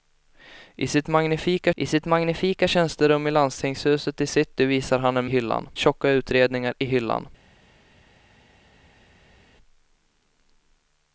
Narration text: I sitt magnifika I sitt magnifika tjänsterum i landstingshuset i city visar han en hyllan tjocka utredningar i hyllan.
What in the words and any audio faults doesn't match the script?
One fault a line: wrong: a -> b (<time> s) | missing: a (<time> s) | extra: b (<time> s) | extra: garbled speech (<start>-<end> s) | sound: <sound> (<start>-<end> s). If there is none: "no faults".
no faults